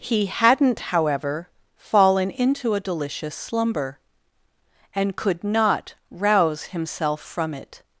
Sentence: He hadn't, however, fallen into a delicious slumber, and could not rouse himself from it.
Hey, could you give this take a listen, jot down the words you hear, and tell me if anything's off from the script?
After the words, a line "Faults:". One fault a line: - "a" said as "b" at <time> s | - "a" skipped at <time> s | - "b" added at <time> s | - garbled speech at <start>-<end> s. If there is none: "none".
He hadn't, however, fallen into a delicious slumber, and could not rouse himself from it.
Faults:
none